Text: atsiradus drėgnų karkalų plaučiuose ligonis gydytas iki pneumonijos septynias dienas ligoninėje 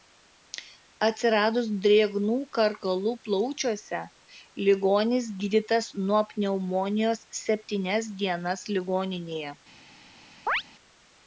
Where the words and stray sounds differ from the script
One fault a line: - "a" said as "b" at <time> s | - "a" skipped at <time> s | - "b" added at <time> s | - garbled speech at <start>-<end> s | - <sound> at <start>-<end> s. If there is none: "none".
- "iki" said as "nuo" at 6.1 s
- chirp at 10.5-10.6 s